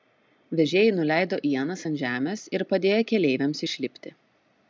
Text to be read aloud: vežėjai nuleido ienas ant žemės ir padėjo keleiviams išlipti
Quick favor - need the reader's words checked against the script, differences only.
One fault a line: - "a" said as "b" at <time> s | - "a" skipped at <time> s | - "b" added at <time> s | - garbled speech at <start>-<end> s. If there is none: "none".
none